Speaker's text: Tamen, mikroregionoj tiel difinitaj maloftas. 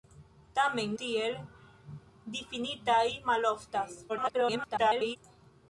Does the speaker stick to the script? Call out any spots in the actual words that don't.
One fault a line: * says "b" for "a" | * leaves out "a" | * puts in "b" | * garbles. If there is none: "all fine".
* leaves out "mikroregionoj"
* garbles